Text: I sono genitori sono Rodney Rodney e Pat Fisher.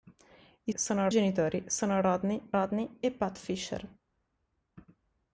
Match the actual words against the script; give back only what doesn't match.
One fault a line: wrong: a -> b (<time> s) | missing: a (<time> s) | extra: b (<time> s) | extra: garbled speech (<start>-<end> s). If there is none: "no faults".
no faults